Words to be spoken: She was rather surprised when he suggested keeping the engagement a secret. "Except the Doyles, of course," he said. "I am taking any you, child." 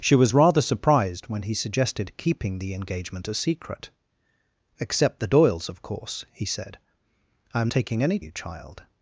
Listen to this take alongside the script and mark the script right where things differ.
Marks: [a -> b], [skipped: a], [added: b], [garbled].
She was rather surprised when he suggested keeping the engagement a secret. "Except the Doyles, of course," he said. "I am taking any you, child."